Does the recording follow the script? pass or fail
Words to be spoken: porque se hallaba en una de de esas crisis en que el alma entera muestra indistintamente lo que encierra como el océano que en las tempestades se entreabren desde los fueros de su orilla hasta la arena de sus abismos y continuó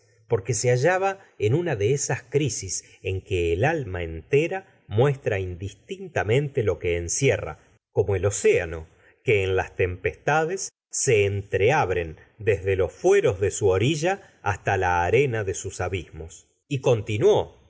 fail